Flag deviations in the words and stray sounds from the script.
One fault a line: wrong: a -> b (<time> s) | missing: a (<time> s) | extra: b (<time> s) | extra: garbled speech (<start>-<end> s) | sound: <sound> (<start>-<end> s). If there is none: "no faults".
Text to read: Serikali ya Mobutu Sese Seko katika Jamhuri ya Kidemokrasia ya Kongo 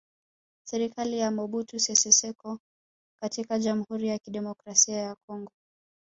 no faults